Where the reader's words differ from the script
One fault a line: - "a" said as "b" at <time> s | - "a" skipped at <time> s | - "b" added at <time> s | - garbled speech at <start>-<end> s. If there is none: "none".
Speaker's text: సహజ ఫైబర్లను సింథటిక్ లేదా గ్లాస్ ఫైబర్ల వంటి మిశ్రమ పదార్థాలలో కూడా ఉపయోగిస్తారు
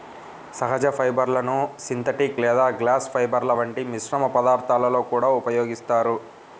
none